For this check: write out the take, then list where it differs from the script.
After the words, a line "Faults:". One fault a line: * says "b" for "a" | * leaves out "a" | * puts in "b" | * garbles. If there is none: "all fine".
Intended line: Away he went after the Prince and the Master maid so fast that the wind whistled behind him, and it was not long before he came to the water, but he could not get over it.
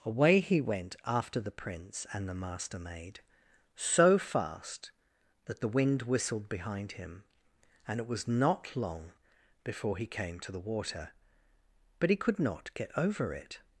Away he went after the Prince and the Master maid so fast that the wind whistled behind him, and it was not long before he came to the water, but he could not get over it.
Faults:
all fine